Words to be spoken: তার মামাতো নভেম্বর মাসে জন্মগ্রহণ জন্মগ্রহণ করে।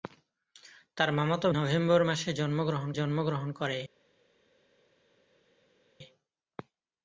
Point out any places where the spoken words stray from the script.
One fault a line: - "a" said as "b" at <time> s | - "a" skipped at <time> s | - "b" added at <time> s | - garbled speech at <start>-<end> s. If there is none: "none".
none